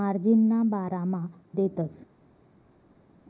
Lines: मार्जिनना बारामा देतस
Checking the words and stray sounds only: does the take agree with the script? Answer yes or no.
yes